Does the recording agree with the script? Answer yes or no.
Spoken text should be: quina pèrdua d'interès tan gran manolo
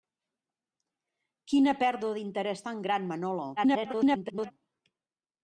no